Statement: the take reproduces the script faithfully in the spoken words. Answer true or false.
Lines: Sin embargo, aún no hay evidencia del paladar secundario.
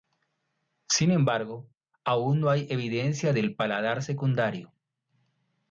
true